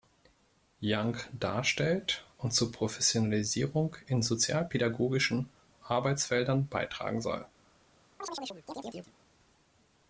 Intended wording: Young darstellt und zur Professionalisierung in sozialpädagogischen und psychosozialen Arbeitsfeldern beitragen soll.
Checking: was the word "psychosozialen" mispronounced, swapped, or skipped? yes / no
yes